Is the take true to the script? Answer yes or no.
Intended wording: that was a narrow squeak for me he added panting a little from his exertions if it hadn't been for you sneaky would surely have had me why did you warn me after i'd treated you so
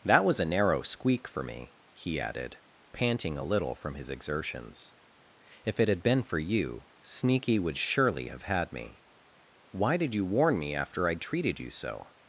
no